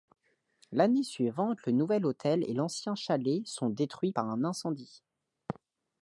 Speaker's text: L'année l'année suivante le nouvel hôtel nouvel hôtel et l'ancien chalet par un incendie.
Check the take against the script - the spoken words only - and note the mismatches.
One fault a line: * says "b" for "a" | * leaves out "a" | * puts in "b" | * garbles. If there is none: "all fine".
* leaves out "l'année"
* leaves out "nouvel hôtel"
* puts in "sont détruits"